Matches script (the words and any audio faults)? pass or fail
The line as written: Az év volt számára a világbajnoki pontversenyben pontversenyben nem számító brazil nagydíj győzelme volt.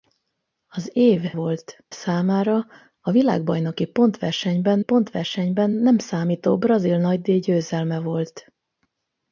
pass